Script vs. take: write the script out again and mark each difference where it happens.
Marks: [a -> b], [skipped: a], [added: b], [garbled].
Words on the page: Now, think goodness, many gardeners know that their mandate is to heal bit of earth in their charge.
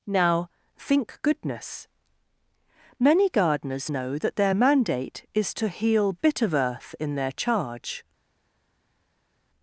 Now, think goodness, many gardeners know that their mandate is to heal bit of earth in their charge.